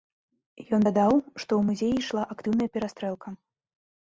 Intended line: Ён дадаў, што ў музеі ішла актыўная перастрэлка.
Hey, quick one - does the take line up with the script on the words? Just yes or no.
yes